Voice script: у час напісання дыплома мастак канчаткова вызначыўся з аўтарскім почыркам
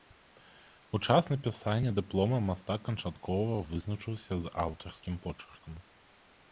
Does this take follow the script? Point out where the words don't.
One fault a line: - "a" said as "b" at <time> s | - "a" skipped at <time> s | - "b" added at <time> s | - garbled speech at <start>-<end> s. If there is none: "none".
none